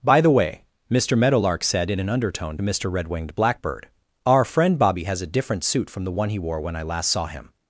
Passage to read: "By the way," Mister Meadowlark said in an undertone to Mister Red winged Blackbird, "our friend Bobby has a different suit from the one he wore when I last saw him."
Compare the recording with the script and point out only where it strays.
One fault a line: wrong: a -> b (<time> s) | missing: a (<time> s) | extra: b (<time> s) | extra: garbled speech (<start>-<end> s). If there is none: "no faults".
missing: to (2.6 s)